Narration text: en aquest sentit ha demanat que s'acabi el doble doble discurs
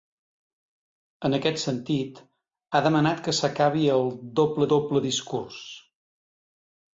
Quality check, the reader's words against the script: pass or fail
pass